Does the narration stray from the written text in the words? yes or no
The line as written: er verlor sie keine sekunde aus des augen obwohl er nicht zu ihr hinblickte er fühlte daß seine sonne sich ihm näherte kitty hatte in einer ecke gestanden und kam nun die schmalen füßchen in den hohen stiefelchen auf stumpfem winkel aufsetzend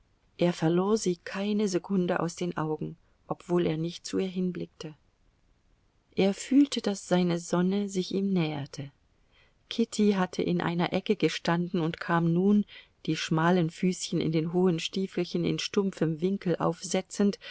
yes